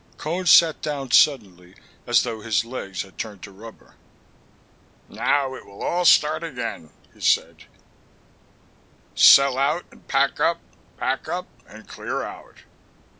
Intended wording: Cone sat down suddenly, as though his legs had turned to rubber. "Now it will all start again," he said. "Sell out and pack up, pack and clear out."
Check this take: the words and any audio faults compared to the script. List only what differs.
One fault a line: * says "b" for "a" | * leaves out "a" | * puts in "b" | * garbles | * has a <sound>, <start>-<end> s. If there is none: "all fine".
* puts in "up"